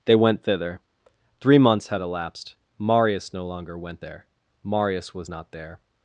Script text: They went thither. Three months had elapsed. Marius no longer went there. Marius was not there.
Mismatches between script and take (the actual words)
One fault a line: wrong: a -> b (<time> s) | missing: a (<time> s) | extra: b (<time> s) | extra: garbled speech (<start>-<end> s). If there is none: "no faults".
no faults